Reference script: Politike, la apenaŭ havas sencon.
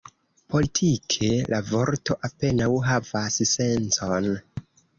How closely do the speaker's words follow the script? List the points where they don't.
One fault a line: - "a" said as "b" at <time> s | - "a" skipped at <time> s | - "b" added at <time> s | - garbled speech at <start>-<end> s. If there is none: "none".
- "vorto" added at 1.7 s